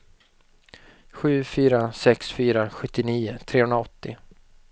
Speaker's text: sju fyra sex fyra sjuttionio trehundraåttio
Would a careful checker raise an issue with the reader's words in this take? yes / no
no